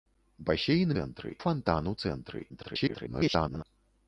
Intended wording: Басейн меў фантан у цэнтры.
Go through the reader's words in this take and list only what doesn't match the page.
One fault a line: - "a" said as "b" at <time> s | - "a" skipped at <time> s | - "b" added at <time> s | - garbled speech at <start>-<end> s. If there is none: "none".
- "меў" said as "цэнтры" at 1.0 s
- garbled speech at 2.5-3.6 s